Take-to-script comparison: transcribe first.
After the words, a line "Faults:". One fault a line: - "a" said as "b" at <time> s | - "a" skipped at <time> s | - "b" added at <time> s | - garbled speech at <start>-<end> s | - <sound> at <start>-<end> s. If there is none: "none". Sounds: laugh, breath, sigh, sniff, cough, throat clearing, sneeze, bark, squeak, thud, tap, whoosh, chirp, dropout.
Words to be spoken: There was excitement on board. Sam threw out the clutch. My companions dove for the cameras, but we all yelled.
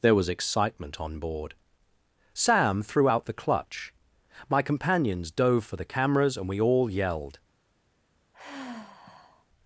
There was excitement on board. Sam threw out the clutch. My companions dove for the cameras, and we all yelled.
Faults:
- "but" said as "and" at 6.4 s
- sigh at 8.3-9.5 s